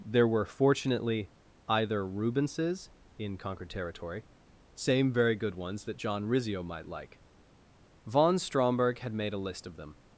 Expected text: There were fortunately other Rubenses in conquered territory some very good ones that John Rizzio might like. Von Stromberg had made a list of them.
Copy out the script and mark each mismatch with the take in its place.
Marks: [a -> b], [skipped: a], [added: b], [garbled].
There were fortunately [other -> either] Rubenses in conquered territory [some -> same] very good ones that John Rizzio might like. Von Stromberg had made a list of them.